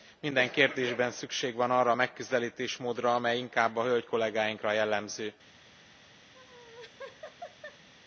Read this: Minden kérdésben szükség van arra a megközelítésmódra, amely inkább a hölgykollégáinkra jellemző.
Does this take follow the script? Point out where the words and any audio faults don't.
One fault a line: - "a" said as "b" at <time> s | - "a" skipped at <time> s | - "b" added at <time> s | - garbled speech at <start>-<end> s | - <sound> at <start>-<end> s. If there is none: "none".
- laugh at 6.3-7.9 s